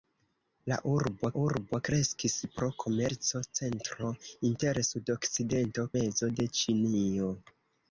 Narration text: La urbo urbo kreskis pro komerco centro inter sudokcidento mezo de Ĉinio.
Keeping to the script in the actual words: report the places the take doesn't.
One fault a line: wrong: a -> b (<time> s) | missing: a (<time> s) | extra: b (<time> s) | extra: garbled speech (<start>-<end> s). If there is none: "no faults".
no faults